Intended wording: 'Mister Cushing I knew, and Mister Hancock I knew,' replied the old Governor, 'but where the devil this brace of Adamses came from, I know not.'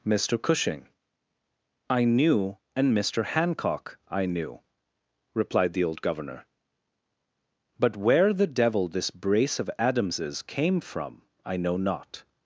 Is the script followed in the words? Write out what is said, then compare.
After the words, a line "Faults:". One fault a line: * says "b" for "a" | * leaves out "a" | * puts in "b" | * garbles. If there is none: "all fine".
'Mister Cushing I knew, and Mister Hancock I knew,' replied the old Governor, 'but where the devil this brace of Adamses came from, I know not.'
Faults:
all fine